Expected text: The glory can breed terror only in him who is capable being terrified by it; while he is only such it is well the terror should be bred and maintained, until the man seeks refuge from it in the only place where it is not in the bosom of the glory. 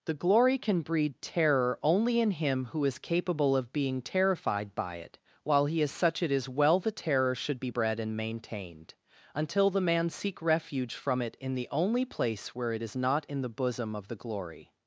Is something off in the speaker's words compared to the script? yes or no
yes